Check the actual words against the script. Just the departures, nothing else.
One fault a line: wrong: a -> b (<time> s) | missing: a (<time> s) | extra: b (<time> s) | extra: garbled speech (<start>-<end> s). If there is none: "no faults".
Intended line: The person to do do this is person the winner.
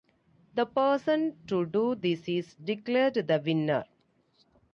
missing: do (1.9 s)
wrong: person -> declared (2.6 s)